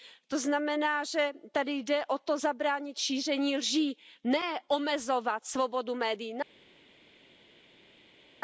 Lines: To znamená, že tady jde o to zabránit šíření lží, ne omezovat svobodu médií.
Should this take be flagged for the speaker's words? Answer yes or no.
no